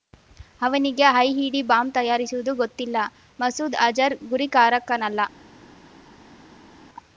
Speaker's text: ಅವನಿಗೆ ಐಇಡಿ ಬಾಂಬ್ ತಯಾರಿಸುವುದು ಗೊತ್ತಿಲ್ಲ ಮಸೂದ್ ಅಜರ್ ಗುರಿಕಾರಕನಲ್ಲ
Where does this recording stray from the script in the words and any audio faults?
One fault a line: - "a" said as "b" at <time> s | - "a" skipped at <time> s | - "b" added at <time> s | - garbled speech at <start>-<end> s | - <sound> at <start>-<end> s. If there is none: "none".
none